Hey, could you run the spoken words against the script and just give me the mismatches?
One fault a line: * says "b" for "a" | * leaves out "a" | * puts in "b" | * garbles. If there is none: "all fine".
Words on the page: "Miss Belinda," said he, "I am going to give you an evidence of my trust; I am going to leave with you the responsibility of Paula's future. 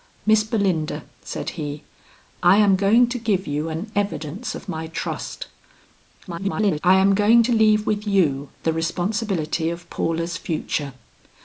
* garbles